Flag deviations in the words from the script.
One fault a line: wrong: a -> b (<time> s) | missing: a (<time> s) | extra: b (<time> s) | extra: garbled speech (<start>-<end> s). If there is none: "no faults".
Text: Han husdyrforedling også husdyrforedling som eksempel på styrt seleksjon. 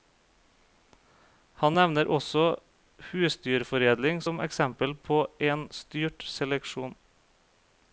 wrong: husdyrforedling -> nevner (1.8 s)
extra: en (5.5 s)